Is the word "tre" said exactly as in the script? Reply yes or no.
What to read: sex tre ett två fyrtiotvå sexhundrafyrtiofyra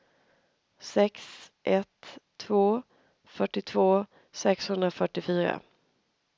no